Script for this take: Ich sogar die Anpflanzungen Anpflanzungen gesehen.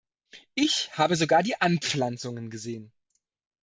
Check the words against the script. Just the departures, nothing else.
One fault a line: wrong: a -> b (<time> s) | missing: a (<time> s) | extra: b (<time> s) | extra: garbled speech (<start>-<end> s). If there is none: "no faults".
extra: habe (1.0 s)
missing: Anpflanzungen (2.5 s)